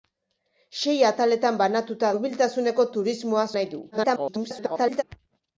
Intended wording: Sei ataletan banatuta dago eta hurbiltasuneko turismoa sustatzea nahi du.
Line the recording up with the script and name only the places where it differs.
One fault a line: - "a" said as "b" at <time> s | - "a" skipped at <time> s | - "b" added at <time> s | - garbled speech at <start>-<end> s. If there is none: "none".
- "dago eta" skipped at 2.1 s
- "sustatzea" skipped at 3.5 s
- garbled speech at 3.9-5.0 s